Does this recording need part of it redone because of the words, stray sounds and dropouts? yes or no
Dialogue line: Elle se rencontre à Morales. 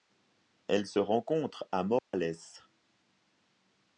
yes